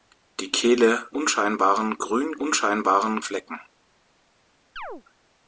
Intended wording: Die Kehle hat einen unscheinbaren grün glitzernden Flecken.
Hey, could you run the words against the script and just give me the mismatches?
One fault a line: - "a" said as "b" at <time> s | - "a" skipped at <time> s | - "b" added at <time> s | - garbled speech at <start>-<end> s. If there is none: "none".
- "hat einen" skipped at 1.1 s
- "glitzernden" said as "unscheinbaren" at 2.3 s